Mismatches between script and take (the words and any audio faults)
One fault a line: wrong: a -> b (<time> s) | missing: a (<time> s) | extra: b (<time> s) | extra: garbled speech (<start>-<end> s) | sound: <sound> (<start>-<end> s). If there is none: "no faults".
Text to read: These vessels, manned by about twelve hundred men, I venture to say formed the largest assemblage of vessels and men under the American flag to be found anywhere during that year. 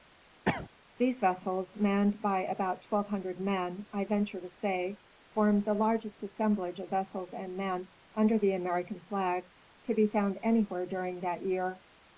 sound: cough (0.5-0.7 s)